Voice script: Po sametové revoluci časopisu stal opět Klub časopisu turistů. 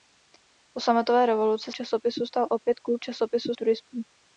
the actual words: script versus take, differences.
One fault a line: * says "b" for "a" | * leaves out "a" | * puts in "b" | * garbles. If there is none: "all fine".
all fine